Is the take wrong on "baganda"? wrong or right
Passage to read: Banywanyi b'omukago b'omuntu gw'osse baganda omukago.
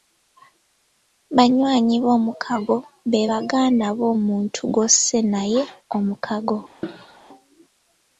wrong